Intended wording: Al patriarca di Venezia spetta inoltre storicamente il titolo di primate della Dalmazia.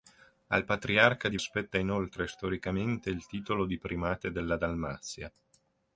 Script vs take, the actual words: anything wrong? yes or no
yes